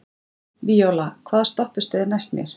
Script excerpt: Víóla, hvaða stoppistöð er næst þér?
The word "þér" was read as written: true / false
false